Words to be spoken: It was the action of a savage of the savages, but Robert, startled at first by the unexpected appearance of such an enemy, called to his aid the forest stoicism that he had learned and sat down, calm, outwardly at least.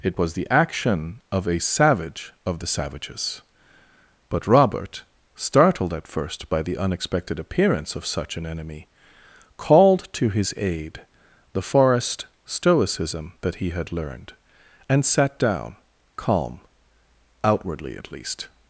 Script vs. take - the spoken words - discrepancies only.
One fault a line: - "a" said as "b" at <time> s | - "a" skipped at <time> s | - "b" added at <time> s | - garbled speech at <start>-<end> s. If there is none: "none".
none